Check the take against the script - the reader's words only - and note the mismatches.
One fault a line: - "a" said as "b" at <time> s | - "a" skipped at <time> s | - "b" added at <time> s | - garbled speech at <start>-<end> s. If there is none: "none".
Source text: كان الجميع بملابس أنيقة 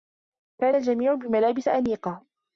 none